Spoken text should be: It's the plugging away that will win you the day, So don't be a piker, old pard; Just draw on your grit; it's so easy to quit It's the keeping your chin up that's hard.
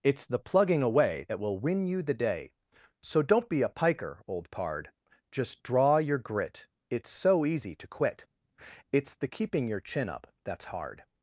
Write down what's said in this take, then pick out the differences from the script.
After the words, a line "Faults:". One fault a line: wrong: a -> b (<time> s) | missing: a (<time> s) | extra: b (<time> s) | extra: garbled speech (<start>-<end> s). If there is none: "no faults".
It's the plugging away that will win you the day, So don't be a piker, old pard; Just draw your grit; it's so easy to quit It's the keeping your chin up that's hard.
Faults:
missing: on (6.0 s)